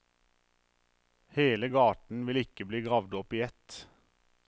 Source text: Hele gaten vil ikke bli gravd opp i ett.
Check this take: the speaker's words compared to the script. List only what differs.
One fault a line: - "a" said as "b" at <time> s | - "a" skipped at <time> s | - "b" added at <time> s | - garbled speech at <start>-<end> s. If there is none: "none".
none